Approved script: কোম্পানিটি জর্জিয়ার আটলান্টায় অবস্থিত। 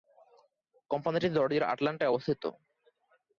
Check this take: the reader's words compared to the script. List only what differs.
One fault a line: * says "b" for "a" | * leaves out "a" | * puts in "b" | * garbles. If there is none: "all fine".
all fine